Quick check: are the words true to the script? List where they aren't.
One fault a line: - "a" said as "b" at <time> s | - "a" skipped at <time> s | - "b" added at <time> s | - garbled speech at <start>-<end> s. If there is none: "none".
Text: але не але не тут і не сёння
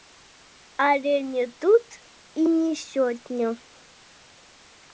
- "але не" skipped at 1.5 s